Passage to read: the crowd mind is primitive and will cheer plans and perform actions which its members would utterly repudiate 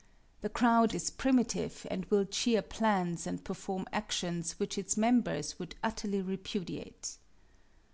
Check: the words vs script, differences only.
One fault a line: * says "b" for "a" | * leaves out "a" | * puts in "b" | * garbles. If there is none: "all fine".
* leaves out "mind"